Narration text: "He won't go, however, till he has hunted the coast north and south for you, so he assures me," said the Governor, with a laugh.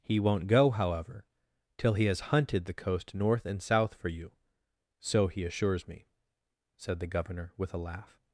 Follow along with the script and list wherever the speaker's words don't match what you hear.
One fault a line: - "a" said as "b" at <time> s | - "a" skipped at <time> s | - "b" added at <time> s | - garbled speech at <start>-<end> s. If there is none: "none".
none